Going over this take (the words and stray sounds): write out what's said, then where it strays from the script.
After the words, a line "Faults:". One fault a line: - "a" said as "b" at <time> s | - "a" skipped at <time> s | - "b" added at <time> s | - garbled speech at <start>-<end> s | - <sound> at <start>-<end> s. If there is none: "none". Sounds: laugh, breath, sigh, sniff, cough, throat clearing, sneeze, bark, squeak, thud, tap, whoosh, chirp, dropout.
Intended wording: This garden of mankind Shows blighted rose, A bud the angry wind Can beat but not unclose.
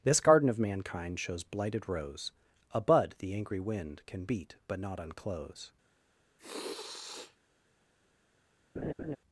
This garden of mankind Shows blighted rose, A bud the angry wind Can beat but not unclose.
Faults:
- sniff at 6.4-7.4 s
- laugh at 8.8-9.2 s